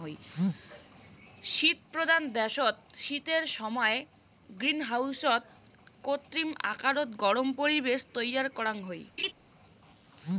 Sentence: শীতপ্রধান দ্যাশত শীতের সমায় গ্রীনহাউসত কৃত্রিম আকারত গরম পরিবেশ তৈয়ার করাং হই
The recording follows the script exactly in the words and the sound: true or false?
false